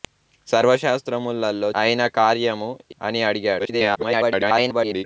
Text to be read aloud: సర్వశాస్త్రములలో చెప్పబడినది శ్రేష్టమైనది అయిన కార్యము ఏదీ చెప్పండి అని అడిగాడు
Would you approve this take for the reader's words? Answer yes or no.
no